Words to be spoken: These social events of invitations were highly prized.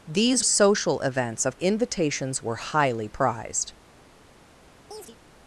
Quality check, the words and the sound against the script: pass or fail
fail